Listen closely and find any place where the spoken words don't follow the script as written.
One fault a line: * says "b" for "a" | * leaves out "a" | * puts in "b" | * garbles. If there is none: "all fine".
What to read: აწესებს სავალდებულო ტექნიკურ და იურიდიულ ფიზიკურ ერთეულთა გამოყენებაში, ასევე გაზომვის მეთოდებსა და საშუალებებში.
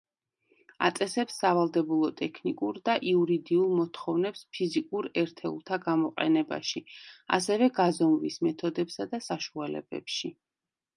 * puts in "მოთხოვნებს"